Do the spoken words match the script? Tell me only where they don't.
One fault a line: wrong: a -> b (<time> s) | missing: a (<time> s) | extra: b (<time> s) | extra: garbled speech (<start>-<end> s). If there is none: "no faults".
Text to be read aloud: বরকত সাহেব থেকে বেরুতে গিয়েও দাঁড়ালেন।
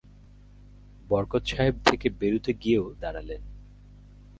no faults